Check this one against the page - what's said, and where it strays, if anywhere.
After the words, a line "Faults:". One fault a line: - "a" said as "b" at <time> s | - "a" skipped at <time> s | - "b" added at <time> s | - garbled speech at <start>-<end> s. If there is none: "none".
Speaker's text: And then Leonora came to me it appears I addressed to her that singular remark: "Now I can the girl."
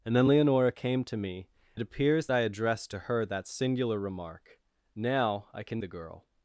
And then Leonora came to me it appears I addressed to her that singular remark: "Now I can the girl."
Faults:
none